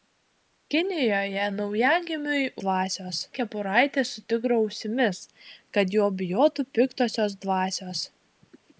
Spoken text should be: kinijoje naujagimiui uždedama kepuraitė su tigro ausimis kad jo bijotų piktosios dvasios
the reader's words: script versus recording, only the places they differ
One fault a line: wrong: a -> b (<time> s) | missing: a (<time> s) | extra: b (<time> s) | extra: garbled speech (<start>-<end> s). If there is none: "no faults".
wrong: uždedama -> dvasios (2.7 s)